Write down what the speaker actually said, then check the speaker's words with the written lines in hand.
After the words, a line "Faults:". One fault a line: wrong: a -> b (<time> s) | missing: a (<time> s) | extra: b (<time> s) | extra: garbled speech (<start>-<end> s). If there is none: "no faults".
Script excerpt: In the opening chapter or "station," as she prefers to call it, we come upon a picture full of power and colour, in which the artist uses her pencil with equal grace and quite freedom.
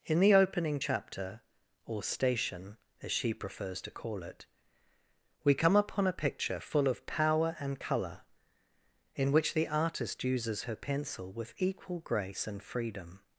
In the opening chapter or "station," as she prefers to call it, we come upon a picture full of power and colour, in which the artist uses her pencil with equal grace and freedom.
Faults:
missing: quite (12.6 s)